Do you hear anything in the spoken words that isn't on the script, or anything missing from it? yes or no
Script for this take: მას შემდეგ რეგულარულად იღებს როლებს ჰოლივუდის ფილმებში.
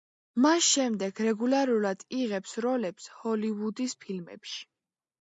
no